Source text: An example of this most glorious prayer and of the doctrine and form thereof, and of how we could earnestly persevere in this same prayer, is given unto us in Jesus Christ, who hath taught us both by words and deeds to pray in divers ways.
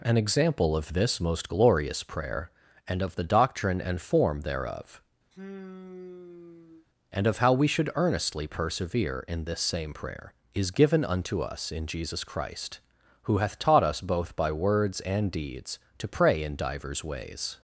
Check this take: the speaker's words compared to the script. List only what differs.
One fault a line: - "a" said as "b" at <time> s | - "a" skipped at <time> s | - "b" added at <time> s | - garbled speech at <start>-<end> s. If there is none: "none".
- "could" said as "should" at 7.7 s